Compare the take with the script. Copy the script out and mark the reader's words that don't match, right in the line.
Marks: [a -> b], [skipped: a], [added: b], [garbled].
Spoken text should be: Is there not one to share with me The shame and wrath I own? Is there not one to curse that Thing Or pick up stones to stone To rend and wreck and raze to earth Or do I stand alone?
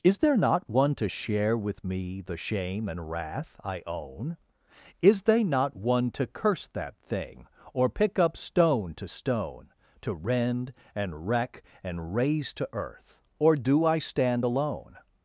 Is there not one to share with me The shame and wrath I own? Is [there -> they] not one to curse that Thing Or pick up [stones -> stone] to stone To rend and wreck and raze to earth Or do I stand alone?